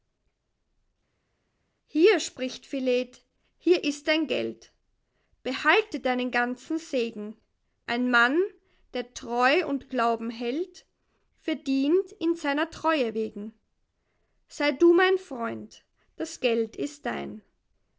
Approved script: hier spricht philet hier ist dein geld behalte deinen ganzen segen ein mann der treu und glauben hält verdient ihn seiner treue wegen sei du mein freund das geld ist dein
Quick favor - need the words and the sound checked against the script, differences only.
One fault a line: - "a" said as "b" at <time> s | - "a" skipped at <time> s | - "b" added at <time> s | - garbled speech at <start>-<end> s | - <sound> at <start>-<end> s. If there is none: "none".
none